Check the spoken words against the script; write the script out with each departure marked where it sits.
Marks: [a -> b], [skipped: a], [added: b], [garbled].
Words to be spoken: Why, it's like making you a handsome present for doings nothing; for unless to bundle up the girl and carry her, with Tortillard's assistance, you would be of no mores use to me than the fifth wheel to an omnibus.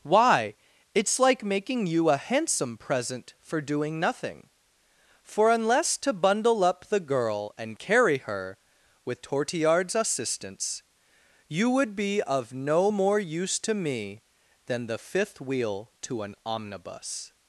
Why, it's like making you a handsome present for [doings -> doing] nothing; for unless to bundle up the girl and carry her, with Tortillard's assistance, you would be of no [mores -> more] use to me than the fifth wheel to an omnibus.